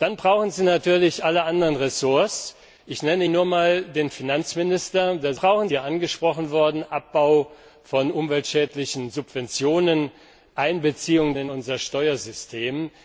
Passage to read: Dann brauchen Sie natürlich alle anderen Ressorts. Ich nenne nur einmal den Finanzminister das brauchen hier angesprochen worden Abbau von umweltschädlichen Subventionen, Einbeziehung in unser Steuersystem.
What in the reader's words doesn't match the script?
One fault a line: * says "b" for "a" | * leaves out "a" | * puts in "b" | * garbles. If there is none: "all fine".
all fine